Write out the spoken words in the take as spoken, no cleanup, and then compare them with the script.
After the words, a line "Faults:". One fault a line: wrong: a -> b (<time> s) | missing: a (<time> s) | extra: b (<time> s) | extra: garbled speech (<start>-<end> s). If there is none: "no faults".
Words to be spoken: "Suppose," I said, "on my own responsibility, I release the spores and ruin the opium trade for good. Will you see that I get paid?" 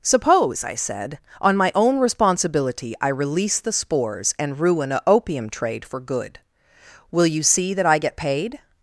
"Suppose," I said, "on my own responsibility, I release the spores and ruin a opium trade for good. Will you see that I get paid?"
Faults:
wrong: the -> a (4.9 s)